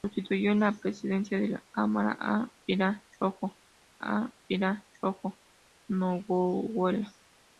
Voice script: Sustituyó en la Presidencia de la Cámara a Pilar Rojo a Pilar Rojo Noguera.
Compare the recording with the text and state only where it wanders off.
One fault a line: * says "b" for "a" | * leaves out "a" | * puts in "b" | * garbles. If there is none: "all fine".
all fine